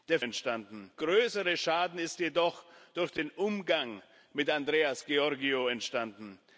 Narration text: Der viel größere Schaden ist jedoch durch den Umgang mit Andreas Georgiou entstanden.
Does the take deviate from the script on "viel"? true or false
true